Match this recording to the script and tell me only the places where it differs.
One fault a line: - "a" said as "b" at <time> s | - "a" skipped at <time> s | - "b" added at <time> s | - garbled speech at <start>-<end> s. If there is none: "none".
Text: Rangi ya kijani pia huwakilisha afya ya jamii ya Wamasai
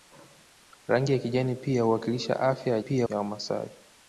- "jamii" said as "pia" at 2.8 s